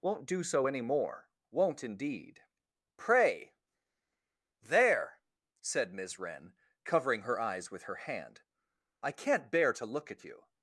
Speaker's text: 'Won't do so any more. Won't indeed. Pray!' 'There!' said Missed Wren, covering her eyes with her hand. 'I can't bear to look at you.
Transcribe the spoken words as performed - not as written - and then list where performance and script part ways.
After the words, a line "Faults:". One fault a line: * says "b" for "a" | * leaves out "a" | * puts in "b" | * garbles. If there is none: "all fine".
'Won't do so any more. Won't indeed. Pray!' 'There!' said Miss Wren, covering her eyes with her hand. 'I can't bear to look at you.
Faults:
* says "Miss" for "Missed"